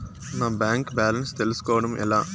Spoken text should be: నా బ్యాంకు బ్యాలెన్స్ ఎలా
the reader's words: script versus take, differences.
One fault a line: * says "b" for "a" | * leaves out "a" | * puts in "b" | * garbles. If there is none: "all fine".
* puts in "తెలుస్కోవడం"